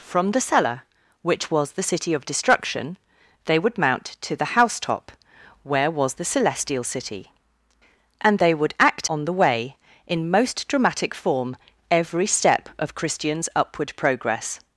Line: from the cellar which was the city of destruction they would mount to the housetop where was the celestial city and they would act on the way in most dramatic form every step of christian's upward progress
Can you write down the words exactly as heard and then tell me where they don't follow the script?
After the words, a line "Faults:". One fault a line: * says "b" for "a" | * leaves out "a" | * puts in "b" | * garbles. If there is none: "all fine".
from the cellar which was the city of destruction they would mount to the housetop where was the celestial city and they would act on the way in most dramatic form every step of christian's upward progress
Faults:
all fine